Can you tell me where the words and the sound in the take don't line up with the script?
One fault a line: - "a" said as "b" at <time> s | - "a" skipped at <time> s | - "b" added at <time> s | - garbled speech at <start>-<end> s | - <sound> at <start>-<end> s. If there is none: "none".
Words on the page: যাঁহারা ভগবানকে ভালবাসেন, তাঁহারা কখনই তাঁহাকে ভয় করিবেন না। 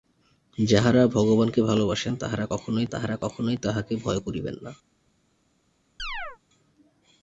- "তাঁহারা কখনই" added at 2.9 s
- chirp at 6.0-6.4 s